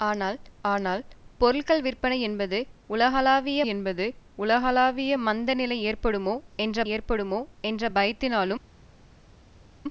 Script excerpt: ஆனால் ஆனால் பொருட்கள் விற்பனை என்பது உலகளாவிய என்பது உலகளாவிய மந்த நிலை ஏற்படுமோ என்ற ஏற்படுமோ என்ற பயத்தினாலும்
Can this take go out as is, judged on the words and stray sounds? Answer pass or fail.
pass